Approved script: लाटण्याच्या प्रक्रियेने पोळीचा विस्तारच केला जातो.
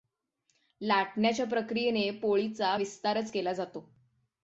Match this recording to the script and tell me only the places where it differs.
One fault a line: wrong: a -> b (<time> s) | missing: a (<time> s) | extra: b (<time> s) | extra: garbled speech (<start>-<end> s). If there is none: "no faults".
no faults